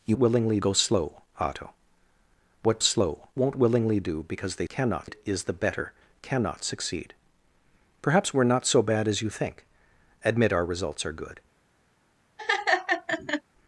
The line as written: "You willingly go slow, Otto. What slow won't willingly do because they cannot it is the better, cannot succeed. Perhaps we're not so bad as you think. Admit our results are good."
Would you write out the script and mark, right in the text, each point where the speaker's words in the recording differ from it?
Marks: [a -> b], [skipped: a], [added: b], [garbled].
"You willingly go slow, Otto. What slow won't willingly do because they cannot it is the better, cannot succeed. Perhaps we're not so bad as you think. Admit our results are good."